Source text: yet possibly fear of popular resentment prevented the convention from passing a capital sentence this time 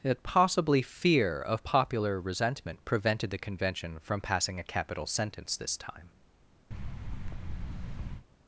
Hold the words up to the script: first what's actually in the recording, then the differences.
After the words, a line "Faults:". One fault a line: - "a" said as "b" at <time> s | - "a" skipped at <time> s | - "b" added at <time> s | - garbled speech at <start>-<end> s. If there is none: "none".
that possibly fear of popular resentment prevented the convention from passing a capital sentence this time
Faults:
- "yet" said as "that" at 0.0 s